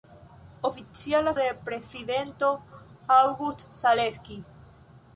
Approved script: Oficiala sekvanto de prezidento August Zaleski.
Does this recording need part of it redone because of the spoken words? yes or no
yes